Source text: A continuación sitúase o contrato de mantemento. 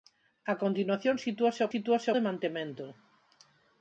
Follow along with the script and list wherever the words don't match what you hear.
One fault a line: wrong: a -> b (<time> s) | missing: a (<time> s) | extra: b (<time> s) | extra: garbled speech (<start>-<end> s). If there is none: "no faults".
wrong: contrato -> sitúase (1.7 s)